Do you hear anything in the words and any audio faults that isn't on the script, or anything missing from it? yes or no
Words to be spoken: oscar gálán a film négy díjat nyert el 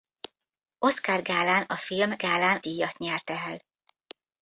yes